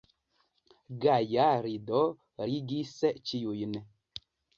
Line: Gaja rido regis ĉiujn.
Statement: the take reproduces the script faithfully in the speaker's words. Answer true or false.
true